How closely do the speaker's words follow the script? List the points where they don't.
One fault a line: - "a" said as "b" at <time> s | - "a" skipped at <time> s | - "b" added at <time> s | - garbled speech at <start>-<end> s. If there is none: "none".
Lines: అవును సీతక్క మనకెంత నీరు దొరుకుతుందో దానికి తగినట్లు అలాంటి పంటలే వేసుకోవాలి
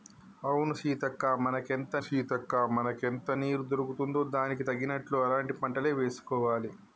- "సీతక్క మనకెంత" added at 2.0 s